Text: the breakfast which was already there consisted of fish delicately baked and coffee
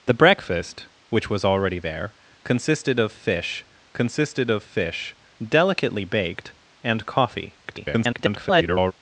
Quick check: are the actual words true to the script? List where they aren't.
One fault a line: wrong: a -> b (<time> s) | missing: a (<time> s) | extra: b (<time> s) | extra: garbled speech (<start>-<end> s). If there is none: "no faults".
extra: consisted of fish (3.9 s)
extra: garbled speech (7.6-8.9 s)